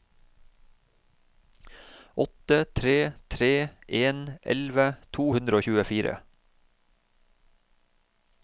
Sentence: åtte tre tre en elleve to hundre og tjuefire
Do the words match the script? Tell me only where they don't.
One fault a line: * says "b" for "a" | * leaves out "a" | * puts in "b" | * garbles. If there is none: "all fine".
all fine